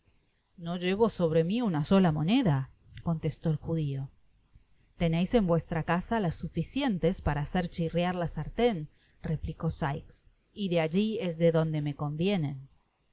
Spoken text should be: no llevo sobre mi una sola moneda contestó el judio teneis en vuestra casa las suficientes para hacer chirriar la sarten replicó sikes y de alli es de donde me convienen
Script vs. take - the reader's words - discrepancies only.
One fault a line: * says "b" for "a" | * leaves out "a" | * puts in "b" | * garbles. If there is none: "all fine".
all fine